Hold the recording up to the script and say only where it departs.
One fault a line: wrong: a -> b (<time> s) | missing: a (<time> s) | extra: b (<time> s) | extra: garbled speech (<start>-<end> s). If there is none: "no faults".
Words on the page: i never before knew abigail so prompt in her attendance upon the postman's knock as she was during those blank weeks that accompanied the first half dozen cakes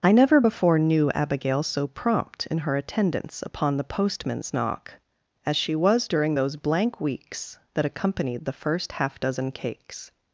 no faults